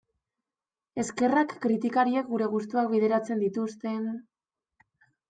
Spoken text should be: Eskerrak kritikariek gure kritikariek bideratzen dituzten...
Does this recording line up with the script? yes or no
no